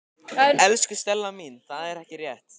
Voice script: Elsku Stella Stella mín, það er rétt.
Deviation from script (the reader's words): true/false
true